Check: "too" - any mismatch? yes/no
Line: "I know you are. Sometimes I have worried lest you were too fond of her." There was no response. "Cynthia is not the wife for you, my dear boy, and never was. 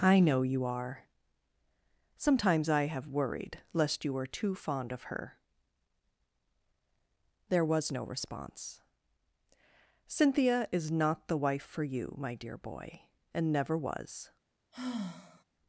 no